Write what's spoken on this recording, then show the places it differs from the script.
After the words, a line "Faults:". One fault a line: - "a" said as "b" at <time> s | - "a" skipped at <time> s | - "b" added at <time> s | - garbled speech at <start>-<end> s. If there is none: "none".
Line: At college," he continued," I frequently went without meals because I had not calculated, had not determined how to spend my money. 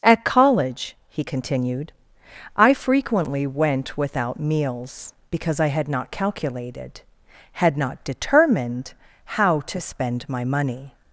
At college," he continued," I frequently went without meals because I had not calculated, had not determined how to spend my money.
Faults:
none